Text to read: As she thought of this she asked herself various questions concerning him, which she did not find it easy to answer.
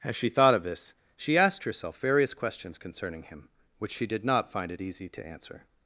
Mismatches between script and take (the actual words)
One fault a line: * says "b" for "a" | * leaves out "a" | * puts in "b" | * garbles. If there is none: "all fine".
all fine